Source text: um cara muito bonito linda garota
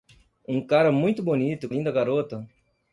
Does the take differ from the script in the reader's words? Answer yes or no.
no